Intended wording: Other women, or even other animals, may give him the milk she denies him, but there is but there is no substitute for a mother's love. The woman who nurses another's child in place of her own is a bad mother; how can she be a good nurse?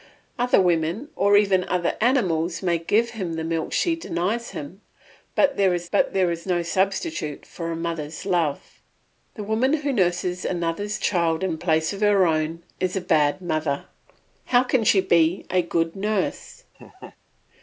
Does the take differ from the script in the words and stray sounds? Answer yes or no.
yes